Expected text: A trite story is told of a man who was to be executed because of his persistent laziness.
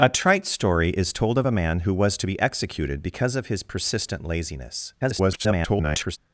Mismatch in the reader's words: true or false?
true